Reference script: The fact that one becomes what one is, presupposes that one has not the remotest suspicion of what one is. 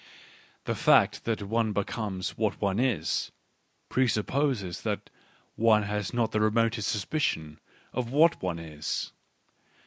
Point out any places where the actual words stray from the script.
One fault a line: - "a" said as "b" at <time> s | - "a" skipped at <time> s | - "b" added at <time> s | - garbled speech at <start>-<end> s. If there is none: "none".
none